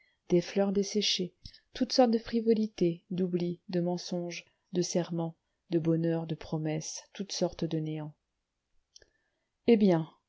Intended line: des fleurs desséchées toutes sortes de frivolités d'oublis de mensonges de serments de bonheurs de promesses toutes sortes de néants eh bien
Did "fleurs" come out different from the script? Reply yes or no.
no